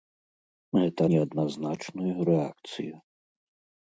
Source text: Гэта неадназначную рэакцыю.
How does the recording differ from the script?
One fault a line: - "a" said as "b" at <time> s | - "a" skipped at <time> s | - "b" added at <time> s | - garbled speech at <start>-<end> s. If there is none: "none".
none